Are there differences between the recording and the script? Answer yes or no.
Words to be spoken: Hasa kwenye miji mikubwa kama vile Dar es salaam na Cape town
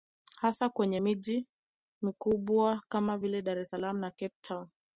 no